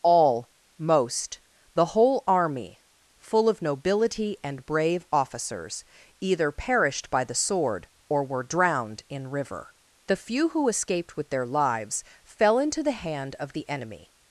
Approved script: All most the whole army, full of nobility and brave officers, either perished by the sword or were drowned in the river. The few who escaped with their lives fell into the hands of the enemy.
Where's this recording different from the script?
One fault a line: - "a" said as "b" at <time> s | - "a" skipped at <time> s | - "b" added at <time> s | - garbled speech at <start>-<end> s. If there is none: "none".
- "the" skipped at 9.3 s
- "hands" said as "hand" at 12.9 s